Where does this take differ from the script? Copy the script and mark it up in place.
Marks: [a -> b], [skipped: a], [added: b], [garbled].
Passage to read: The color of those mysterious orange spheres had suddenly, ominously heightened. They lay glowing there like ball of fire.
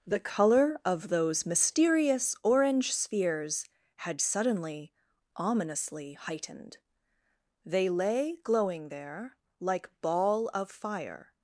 The color of those mysterious orange spheres had suddenly, ominously heightened. They lay glowing there like ball of fire.